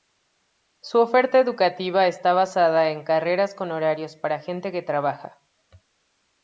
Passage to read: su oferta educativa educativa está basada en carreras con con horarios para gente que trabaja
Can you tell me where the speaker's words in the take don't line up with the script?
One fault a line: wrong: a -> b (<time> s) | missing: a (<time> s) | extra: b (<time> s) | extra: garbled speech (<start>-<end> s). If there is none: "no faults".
missing: educativa (2.1 s)
missing: con (3.7 s)